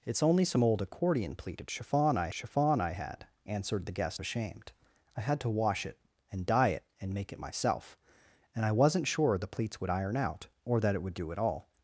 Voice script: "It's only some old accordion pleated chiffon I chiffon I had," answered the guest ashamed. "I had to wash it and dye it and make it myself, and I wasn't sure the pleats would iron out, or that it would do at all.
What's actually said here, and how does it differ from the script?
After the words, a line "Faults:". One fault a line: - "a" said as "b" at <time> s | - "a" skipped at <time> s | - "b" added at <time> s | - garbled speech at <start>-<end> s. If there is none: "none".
"It's only some old accordion pleated chiffon I chiffon I had," answered the guest ashamed. "I had to wash it and dye it and make it myself, and I wasn't sure the pleats would iron out, or that it would do at all.
Faults:
none